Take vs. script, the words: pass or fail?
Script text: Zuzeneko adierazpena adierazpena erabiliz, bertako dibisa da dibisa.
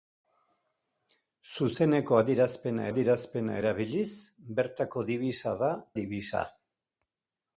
pass